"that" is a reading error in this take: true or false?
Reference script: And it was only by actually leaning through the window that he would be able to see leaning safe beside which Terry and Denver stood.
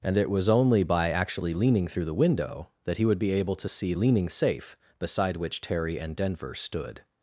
false